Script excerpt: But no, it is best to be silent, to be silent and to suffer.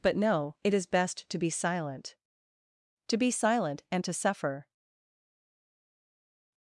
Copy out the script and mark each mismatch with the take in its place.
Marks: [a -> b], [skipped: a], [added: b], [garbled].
But no, it is best to be silent, to be silent and to suffer.